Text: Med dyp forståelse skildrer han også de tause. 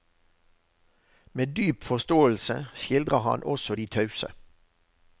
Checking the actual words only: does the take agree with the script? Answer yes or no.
yes